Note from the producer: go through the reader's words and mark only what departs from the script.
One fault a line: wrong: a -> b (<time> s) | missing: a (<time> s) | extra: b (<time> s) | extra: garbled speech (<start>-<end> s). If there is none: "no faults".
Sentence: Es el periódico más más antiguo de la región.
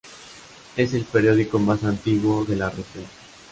missing: más (1.8 s)